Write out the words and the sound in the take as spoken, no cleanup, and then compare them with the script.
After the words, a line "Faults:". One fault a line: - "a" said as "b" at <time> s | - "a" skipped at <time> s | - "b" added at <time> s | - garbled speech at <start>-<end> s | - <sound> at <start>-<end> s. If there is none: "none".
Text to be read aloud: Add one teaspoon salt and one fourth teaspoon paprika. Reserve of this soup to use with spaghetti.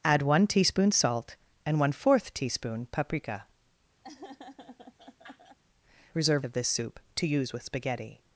Add one teaspoon salt and one fourth teaspoon paprika. Reserve of this soup to use with spaghetti.
Faults:
- laugh at 4.0-5.6 s